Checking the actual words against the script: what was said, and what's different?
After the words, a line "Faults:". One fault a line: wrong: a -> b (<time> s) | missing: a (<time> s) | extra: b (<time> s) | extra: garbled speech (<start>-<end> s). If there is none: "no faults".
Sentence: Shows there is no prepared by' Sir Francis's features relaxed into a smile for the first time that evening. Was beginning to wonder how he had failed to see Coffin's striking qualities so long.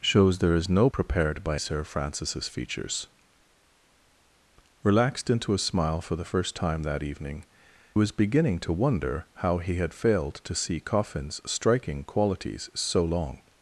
Shows there is no prepared by' Sir Francis's features relaxed into a smile for the first time that evening. Was beginning to wonder how he had failed to see Coffin's striking qualities so long.
Faults:
no faults